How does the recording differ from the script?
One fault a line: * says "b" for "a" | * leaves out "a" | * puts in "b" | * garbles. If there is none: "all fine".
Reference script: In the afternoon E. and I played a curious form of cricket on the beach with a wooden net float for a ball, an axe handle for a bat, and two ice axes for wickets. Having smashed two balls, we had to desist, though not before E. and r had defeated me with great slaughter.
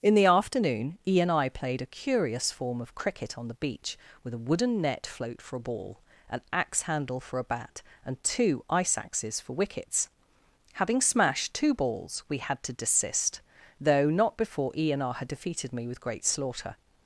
all fine